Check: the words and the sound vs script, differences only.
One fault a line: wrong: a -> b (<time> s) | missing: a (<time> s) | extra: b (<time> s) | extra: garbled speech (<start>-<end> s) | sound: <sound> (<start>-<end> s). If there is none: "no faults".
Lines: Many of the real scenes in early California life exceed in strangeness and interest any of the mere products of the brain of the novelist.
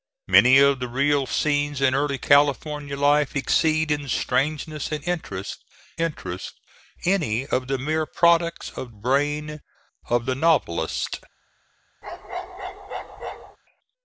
extra: interest (6.0 s)
missing: the (8.9 s)
sound: bark (12.0-13.6 s)